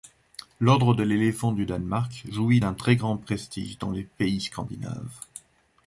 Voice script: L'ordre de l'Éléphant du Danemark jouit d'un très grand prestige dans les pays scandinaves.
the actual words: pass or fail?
pass